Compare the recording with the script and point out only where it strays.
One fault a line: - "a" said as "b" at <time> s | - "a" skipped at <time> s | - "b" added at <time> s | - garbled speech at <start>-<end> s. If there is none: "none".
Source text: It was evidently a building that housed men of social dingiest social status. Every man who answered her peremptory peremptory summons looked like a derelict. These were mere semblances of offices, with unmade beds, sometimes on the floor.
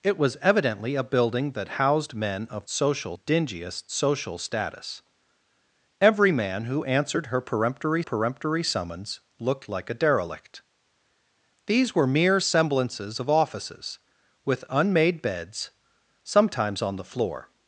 none